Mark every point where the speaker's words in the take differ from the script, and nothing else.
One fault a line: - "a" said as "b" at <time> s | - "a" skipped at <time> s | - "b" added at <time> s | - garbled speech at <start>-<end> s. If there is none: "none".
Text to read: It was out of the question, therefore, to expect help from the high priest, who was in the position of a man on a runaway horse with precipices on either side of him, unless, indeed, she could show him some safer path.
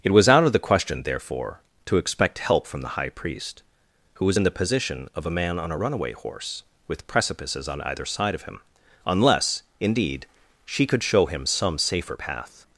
none